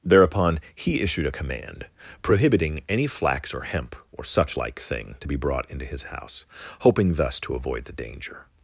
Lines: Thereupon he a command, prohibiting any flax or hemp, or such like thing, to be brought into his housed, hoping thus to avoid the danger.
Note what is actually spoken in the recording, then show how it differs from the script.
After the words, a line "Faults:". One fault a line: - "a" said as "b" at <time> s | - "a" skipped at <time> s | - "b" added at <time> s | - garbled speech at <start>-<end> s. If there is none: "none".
Thereupon he issued a command, prohibiting any flax or hemp, or such like thing, to be brought into his house, hoping thus to avoid the danger.
Faults:
- "issued" added at 1.0 s
- "housed" said as "house" at 6.0 s